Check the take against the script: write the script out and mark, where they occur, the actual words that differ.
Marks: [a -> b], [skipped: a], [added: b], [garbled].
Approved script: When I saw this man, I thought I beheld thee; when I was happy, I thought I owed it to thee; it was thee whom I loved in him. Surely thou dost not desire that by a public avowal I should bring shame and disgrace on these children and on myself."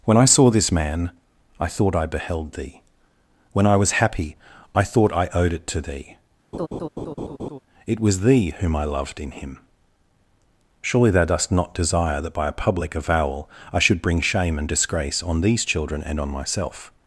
When I saw this man, I thought I beheld thee; when I was happy, I thought I owed it to thee; it was thee whom I loved in him. Surely thou dost not desire that by a public avowal I should bring shame and disgrace on these children and on myself."